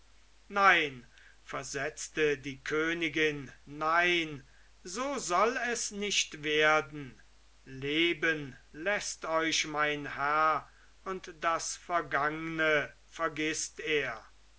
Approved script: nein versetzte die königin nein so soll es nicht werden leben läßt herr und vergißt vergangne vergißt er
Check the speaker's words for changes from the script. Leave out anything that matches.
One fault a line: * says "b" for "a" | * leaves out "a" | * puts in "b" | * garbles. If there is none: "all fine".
* puts in "euch mein"
* says "das" for "vergißt"